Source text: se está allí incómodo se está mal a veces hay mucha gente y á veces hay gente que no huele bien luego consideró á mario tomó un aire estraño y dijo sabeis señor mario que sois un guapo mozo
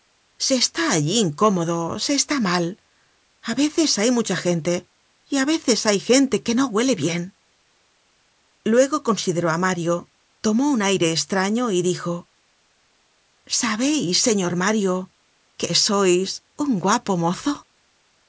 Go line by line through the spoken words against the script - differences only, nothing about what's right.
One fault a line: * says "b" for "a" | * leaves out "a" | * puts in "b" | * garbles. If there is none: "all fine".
all fine